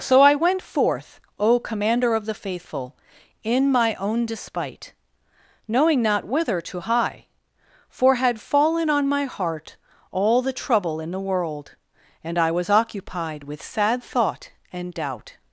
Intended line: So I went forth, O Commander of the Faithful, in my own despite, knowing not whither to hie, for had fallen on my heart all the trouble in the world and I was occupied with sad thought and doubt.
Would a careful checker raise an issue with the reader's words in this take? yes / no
no